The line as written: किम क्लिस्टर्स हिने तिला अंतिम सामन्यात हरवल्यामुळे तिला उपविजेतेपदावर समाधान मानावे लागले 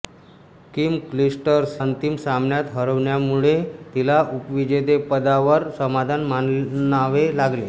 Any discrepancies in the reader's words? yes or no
yes